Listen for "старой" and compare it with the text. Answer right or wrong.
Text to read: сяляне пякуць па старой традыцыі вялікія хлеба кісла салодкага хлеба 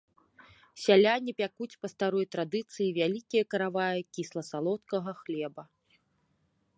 right